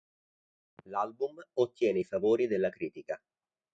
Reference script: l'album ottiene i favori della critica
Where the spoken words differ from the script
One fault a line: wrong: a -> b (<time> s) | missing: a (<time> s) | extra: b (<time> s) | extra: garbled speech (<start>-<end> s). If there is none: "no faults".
no faults